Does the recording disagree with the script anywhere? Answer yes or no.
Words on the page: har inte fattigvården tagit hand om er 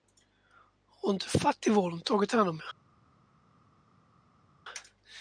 no